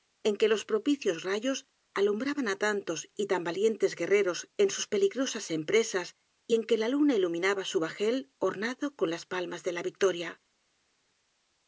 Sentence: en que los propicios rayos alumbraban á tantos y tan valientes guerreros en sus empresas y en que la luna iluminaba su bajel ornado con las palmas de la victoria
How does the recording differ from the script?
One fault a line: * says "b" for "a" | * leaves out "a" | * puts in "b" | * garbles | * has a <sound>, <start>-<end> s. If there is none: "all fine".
* puts in "peligrosas"